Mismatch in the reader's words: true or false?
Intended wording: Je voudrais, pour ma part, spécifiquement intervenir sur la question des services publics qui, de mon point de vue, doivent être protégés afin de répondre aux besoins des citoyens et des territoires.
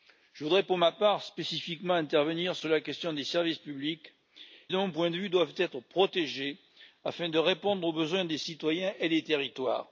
true